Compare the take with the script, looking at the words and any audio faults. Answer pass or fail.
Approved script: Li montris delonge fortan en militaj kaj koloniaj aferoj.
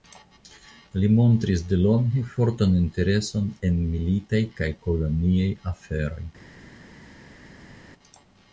fail